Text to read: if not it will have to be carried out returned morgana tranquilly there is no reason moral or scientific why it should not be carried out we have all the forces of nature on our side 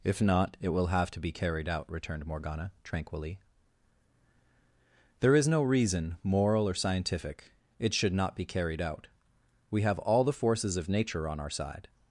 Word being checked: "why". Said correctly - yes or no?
no